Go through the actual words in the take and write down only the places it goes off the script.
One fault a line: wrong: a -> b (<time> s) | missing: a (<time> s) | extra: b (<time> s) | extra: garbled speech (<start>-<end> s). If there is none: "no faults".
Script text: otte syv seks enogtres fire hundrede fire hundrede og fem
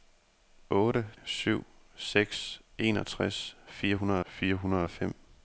no faults